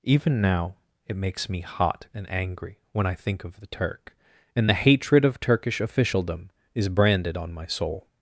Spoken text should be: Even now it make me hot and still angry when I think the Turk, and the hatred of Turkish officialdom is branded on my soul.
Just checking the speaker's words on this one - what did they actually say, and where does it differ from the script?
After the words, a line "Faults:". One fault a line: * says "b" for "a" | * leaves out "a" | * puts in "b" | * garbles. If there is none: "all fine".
Even now it makes me hot and angry when I think of the Turk, and the hatred of Turkish officialdom is branded on my soul.
Faults:
* says "makes" for "make"
* leaves out "still"
* puts in "of"